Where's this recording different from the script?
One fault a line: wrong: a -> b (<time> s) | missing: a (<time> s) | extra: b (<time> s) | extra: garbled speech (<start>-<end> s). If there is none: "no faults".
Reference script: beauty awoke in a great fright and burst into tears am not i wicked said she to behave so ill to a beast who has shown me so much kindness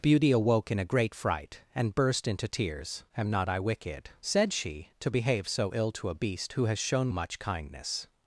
missing: me so (7.1 s)